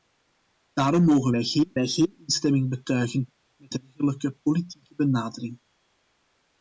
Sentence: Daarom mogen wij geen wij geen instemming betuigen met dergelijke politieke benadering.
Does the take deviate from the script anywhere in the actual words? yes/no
no